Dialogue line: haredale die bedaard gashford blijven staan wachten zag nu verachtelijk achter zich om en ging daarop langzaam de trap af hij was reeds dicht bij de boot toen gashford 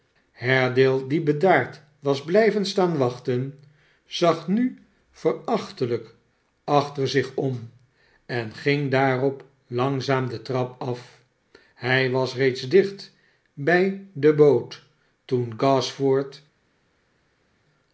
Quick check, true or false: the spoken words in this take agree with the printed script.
false